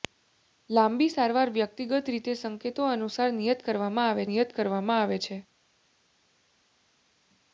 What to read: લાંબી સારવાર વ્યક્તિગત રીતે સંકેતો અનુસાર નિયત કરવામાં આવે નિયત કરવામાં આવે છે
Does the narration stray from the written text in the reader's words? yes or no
no